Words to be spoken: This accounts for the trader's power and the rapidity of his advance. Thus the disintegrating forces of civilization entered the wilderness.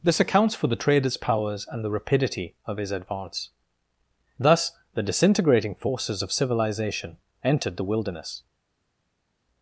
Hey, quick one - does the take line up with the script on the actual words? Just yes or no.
no